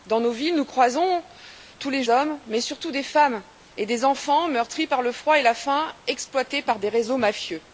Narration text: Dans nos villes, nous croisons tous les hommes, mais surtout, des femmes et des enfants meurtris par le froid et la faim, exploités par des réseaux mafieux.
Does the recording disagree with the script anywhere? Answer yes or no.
no